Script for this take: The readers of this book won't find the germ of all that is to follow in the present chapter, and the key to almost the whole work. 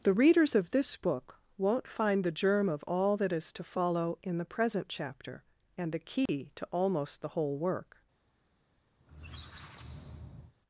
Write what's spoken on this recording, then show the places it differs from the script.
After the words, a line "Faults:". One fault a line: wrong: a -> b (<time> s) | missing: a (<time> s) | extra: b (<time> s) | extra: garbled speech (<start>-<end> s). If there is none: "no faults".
The readers of this book won't find the germ of all that is to follow in the present chapter, and the key to almost the whole work.
Faults:
no faults